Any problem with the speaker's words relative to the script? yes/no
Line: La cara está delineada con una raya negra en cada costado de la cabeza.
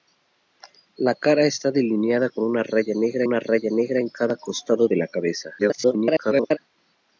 yes